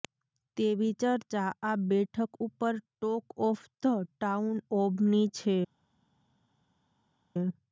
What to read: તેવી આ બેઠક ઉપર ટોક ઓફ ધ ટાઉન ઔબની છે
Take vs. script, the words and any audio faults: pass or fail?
fail